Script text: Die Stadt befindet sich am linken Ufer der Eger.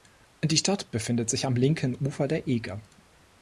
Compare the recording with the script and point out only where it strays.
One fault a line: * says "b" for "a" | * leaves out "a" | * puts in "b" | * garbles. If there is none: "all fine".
all fine